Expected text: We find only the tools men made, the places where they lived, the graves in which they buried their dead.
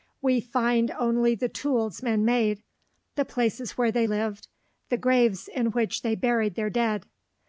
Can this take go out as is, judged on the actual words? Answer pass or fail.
pass